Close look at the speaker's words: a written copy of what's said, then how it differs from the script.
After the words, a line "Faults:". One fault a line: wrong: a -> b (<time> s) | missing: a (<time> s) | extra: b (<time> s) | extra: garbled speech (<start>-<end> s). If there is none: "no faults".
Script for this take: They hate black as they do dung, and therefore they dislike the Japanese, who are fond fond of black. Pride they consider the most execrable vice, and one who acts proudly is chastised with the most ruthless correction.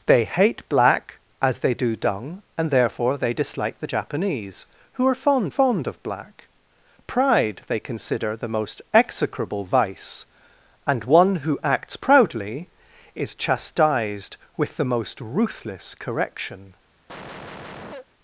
They hate black as they do dung, and therefore they dislike the Japanese, who are fond fond of black. Pride they consider the most execrable vice, and one who acts proudly is chastised with the most ruthless correction.
Faults:
no faults